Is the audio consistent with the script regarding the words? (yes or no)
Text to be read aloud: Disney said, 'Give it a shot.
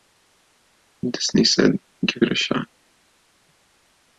yes